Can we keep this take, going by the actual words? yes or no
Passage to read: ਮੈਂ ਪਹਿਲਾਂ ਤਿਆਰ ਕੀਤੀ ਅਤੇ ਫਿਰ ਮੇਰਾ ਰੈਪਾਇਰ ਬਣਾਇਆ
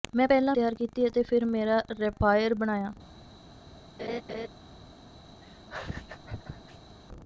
yes